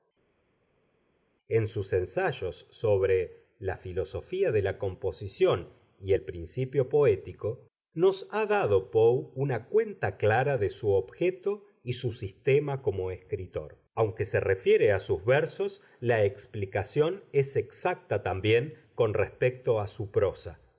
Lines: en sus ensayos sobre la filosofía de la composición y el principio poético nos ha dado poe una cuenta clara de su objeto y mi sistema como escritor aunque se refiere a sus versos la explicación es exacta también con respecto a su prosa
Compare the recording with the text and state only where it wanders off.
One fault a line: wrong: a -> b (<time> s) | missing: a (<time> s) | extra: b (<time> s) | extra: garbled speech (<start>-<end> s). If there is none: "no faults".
wrong: mi -> su (11.9 s)